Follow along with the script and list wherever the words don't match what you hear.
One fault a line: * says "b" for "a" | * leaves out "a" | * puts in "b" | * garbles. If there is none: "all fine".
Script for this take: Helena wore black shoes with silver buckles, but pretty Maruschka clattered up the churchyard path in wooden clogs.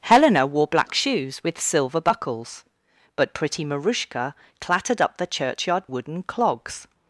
* leaves out "path in"